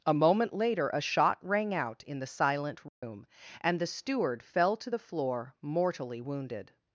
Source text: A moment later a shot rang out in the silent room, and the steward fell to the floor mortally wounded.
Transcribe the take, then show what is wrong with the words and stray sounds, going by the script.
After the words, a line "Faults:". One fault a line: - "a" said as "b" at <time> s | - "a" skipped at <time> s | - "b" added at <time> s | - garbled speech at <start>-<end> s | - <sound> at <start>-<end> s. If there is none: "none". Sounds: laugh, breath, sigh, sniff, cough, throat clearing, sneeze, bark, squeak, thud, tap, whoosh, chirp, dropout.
A moment later a shot rang out in the silent room, and the steward fell to the floor mortally wounded.
Faults:
- dropout at 2.9-3.0 s